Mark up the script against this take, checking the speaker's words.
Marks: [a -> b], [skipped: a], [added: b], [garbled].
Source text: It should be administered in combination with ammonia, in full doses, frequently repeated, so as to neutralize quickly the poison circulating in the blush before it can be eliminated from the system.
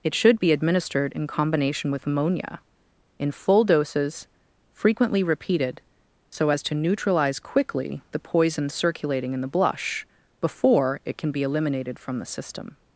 It should be administered in combination with ammonia, in full doses, frequently repeated, so as to neutralize quickly the poison circulating in the blush before it can be eliminated from the system.